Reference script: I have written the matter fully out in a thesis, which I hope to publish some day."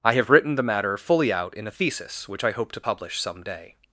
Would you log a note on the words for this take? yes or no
no